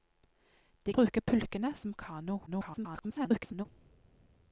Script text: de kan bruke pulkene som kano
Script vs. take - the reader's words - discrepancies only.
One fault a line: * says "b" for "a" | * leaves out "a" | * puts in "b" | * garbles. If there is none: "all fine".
* leaves out "kan"
* garbles